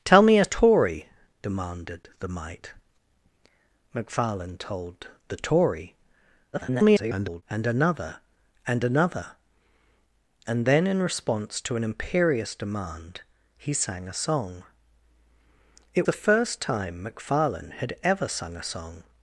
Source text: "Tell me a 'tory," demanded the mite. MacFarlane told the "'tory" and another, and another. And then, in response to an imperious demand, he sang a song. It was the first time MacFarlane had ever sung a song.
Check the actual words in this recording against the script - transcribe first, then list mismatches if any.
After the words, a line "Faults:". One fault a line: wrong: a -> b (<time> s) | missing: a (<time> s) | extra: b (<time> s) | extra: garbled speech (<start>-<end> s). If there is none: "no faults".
"Tell me a 'tory," demanded the mite. MacFarlane told the "'tory" [garbled] and another, and another. And then, in response to an imperious demand, he sang a song. It the first time MacFarlane had ever sung a song.
Faults:
extra: garbled speech (6.5-7.4 s)
missing: was (16.1 s)